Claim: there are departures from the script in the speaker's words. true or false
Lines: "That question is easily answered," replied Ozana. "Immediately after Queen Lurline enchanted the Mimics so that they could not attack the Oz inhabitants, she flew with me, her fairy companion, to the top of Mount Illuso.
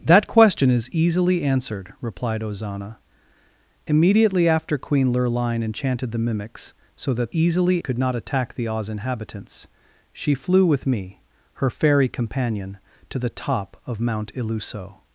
true